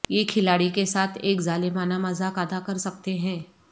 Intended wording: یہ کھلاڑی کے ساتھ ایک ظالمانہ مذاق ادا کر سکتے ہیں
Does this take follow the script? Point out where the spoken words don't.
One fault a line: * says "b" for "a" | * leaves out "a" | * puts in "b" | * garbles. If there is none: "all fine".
all fine